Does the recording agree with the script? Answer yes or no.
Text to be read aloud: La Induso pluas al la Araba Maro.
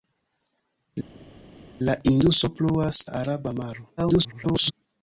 no